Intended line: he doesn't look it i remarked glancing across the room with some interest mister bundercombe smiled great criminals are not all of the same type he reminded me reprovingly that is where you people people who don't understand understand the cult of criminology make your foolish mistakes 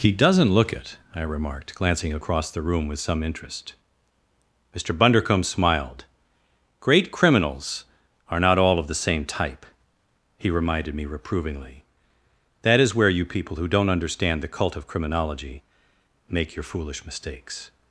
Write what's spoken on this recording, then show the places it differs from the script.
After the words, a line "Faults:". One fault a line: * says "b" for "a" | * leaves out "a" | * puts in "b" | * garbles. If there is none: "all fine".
he doesn't look it i remarked glancing across the room with some interest mister bundercombe smiled great criminals are not all of the same type he reminded me reprovingly that is where you people who don't understand the cult of criminology make your foolish mistakes
Faults:
* leaves out "people"
* leaves out "understand"